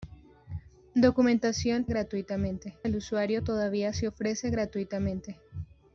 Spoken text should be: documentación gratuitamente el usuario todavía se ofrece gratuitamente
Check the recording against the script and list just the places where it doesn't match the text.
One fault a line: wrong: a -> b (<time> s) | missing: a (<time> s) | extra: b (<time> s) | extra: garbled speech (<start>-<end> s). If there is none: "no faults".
no faults